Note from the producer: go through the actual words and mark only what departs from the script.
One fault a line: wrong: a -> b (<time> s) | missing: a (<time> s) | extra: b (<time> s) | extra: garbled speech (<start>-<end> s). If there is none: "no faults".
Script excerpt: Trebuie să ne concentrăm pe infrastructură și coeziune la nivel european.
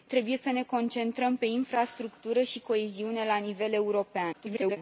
extra: garbled speech (4.3-4.8 s)